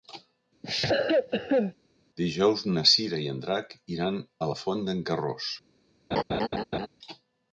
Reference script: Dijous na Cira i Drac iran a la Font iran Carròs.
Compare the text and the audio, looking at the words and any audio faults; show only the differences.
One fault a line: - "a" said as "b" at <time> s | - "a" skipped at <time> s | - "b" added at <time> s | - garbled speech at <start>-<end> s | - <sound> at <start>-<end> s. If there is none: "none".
- cough at 0.6-1.7 s
- "en" added at 3.3 s
- "iran" said as "d'en" at 4.9 s
- laugh at 6.1-6.9 s